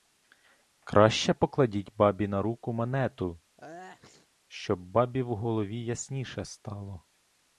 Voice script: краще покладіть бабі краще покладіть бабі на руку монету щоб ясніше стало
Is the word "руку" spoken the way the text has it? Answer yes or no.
yes